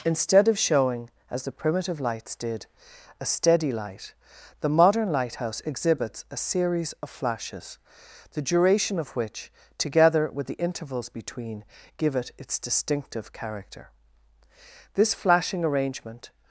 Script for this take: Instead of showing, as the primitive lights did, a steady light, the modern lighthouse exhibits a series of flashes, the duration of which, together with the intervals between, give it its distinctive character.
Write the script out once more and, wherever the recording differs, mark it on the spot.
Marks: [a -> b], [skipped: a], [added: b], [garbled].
Instead of showing, as the primitive lights did, a steady light, the modern lighthouse exhibits a series of flashes, the duration of which, together with the intervals between, give it its distinctive character. [added: This flashing arrangement]